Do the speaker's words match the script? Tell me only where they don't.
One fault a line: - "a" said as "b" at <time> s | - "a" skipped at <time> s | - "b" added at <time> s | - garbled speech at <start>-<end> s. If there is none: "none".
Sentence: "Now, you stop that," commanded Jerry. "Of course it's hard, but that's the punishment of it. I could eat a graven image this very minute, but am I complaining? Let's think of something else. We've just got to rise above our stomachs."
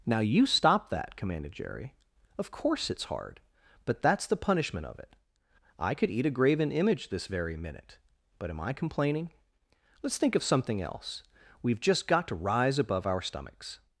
none